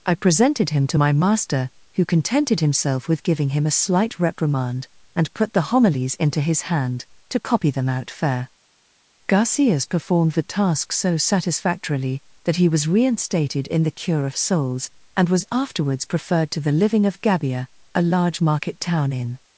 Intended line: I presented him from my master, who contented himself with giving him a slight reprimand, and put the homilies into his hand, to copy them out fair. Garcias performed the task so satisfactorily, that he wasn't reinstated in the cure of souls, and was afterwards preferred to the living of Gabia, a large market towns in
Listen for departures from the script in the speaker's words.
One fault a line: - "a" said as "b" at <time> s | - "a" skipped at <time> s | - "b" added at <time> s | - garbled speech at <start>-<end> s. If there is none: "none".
- "from" said as "to" at 0.9 s
- "wasn't" said as "was" at 12.7 s
- "towns" said as "town" at 18.8 s